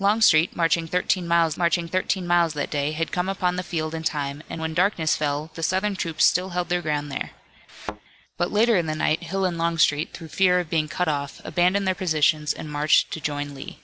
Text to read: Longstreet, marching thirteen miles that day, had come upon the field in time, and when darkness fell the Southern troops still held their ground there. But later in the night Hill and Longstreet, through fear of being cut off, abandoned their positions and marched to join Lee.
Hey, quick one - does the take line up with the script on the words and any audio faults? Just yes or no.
no